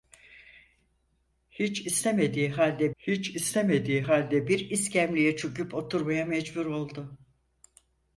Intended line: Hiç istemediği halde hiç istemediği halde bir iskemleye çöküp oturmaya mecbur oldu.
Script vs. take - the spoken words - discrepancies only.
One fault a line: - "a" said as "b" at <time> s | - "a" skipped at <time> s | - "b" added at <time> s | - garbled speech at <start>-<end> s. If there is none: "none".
none